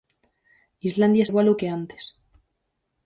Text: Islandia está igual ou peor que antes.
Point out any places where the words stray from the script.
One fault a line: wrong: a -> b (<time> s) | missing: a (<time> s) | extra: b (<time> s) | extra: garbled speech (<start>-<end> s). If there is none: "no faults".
missing: está (1.2 s)
missing: peor (1.6 s)